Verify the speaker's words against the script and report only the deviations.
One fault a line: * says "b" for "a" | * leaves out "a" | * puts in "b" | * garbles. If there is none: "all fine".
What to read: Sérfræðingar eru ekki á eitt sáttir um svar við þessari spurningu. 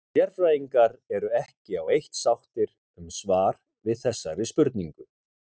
all fine